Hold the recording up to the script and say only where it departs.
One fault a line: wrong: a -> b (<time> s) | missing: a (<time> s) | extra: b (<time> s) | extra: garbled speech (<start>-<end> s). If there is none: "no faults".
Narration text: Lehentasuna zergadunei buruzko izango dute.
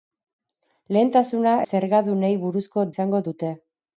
no faults